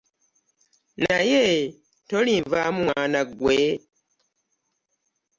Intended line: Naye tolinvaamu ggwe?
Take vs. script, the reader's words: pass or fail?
fail